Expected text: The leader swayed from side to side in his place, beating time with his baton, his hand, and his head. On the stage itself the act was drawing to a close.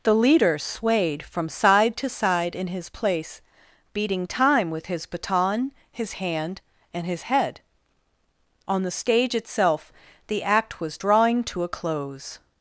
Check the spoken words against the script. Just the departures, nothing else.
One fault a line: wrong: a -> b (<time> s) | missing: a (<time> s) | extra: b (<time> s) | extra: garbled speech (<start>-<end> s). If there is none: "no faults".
no faults